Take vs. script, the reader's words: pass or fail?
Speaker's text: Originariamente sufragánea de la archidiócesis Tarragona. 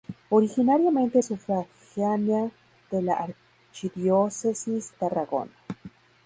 pass